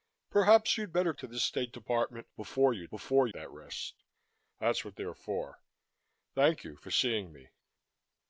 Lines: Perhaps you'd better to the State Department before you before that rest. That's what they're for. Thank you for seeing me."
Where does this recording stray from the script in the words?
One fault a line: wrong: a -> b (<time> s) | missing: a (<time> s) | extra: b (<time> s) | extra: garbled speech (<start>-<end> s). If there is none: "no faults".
no faults